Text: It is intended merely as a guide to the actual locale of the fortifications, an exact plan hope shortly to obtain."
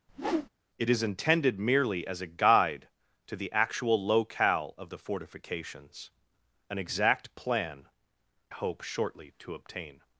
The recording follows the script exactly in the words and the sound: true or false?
false